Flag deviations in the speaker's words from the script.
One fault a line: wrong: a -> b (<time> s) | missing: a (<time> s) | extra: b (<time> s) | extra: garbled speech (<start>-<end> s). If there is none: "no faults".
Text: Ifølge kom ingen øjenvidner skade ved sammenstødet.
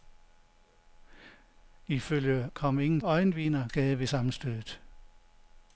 no faults